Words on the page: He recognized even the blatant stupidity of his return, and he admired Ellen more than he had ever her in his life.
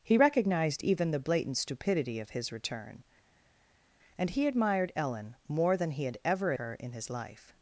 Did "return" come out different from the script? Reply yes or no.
no